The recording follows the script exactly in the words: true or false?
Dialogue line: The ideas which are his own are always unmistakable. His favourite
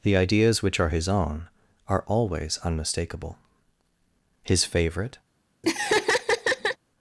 true